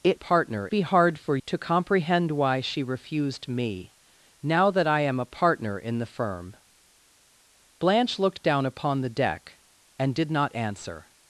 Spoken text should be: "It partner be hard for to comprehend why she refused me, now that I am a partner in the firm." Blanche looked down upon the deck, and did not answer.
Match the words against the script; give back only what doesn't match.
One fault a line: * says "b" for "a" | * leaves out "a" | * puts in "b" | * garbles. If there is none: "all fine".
all fine